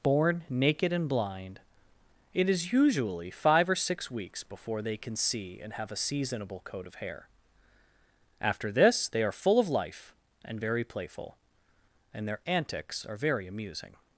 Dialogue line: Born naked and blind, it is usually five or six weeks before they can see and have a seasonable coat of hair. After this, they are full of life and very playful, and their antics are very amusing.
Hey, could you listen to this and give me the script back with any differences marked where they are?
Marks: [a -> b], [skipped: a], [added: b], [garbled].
Born naked and blind, it is usually five or six weeks before they can see and have a seasonable coat of hair. After this, they are full of life and very playful, and their antics are very amusing.